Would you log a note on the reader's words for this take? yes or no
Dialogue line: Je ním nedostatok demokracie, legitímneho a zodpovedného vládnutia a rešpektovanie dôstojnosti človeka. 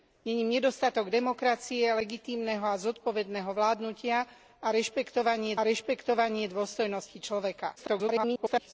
yes